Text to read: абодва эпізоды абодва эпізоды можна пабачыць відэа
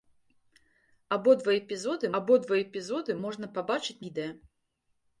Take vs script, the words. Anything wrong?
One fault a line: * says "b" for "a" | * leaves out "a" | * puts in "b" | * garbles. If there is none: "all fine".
all fine